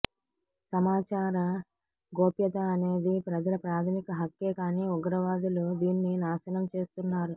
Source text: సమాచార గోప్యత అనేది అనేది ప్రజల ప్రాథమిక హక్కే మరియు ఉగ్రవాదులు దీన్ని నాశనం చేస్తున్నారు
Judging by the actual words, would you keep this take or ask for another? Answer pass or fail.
fail